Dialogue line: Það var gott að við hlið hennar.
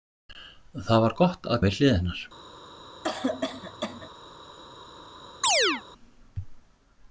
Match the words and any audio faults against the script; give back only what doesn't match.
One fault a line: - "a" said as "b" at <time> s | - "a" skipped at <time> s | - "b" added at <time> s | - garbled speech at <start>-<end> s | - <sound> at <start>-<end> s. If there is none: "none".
- cough at 3.0-4.1 s
- chirp at 5.4-5.8 s